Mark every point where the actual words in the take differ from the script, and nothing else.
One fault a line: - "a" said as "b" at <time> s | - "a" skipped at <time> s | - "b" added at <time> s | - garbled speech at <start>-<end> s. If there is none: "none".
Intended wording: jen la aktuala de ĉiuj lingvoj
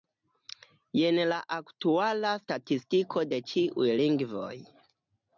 - "statistiko" added at 2.5 s